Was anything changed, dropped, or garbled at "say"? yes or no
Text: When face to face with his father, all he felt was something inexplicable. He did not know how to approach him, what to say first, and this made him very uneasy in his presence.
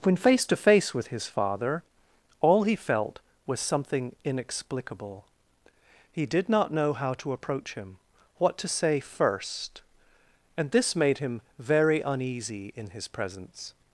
no